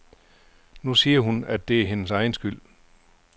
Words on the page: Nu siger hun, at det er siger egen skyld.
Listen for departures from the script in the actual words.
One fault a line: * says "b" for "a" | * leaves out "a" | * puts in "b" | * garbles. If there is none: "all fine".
* says "hendes" for "siger"